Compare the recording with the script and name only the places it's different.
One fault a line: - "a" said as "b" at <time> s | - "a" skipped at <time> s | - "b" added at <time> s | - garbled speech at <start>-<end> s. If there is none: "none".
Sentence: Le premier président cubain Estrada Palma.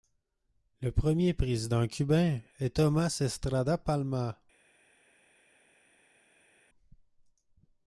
- "est Tomás" added at 2.6 s